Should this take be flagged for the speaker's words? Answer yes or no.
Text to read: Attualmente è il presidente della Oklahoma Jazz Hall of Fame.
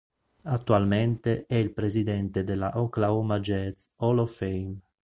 no